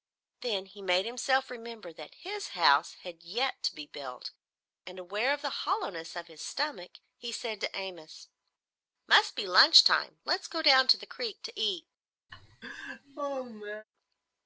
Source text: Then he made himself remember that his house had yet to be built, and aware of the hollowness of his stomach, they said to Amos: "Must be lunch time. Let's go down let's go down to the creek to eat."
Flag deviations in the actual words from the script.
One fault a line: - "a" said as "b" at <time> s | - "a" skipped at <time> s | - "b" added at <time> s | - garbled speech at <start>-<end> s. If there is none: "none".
- "they" said as "he" at 7.2 s
- "let's go down" skipped at 10.9 s